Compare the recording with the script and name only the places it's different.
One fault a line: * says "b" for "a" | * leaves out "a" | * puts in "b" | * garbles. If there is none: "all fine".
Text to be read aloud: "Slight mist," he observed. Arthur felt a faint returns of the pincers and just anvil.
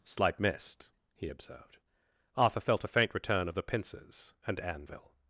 * says "return" for "returns"
* leaves out "just"